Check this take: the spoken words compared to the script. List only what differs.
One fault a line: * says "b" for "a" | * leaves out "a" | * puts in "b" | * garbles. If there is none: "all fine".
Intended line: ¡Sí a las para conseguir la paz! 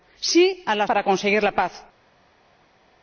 all fine